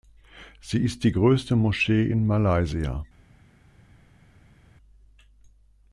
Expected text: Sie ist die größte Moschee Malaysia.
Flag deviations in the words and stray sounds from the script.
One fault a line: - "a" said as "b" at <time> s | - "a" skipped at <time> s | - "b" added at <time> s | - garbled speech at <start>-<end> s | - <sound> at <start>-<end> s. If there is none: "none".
- "in" added at 2.1 s